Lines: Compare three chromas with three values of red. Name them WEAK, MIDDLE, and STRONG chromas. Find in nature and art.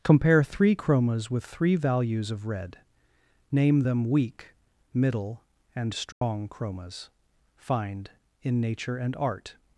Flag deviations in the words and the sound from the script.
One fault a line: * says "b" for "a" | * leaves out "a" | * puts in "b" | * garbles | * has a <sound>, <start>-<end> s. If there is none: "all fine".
* has a dropout, 6.1-6.2 s